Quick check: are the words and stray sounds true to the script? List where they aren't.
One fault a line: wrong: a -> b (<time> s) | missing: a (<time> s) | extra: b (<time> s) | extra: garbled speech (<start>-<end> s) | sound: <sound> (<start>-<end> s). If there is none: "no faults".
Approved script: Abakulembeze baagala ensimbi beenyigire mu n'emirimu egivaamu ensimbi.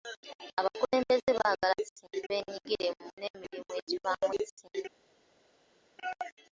no faults